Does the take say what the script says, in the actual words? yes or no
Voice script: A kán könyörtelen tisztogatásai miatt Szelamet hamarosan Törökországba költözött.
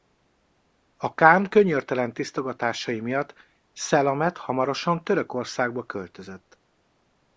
yes